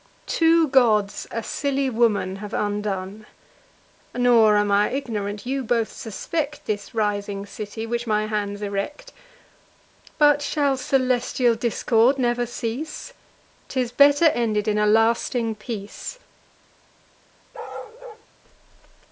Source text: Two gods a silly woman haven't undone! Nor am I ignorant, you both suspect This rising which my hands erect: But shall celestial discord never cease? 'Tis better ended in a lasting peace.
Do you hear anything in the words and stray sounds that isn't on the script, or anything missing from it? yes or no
yes